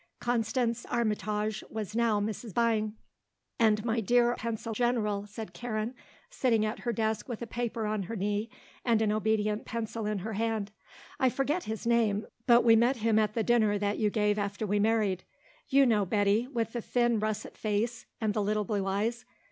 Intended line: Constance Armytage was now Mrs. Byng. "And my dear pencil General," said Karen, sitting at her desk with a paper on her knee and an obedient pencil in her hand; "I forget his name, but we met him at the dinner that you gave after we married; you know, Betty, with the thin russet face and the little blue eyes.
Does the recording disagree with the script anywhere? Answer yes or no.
no